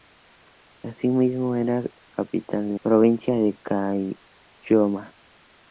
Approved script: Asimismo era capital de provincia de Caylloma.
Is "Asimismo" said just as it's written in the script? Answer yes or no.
yes